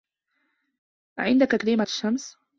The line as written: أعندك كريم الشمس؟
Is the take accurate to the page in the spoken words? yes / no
yes